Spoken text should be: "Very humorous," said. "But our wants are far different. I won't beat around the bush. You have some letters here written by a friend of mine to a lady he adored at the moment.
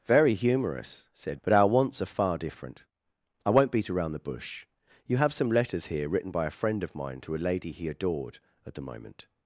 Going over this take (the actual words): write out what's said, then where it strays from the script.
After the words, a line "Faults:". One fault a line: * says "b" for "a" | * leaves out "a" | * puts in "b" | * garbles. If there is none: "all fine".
"Very humorous," said. "But our wants are far different. I won't beat around the bush. You have some letters here written by a friend of mine to a lady he adored at the moment.
Faults:
all fine